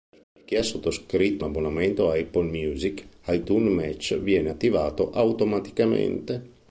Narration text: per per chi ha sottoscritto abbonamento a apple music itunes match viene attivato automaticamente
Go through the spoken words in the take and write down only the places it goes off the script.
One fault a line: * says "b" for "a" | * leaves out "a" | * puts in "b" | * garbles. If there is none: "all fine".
all fine